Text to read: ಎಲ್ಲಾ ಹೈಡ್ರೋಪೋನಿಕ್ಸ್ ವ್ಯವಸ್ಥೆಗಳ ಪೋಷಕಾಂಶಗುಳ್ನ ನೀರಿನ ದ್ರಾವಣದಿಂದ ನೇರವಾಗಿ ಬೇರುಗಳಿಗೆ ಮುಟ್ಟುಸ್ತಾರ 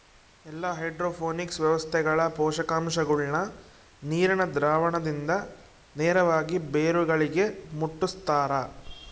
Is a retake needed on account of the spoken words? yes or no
no